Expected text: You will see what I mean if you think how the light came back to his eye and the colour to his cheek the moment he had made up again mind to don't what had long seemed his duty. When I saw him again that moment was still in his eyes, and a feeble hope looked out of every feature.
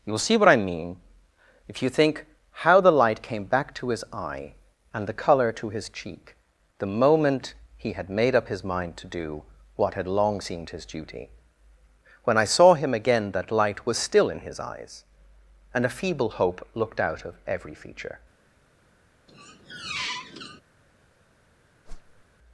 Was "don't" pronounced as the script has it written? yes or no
no